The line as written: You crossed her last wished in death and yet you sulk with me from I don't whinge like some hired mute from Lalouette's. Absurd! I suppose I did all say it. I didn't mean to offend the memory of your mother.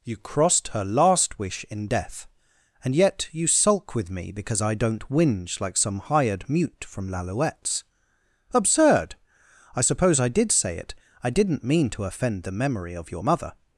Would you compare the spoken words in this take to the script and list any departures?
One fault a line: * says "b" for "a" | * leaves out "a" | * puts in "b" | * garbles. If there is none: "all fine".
* says "wish" for "wished"
* says "because" for "from"
* leaves out "all"